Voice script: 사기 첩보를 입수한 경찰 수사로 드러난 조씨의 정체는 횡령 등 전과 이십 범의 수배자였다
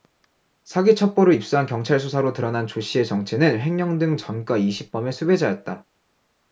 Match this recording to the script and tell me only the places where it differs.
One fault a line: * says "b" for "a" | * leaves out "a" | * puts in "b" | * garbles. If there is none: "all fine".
all fine